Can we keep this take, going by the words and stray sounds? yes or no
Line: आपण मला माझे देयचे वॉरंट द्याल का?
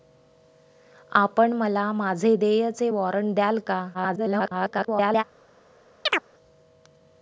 no